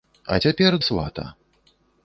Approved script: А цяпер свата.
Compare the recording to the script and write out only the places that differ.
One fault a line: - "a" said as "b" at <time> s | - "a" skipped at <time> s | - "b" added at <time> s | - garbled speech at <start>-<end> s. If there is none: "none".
none